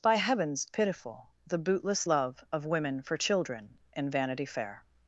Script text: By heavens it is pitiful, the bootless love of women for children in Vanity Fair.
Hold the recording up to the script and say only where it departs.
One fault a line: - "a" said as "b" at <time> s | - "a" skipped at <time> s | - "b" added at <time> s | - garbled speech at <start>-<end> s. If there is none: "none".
- "it is" skipped at 0.7 s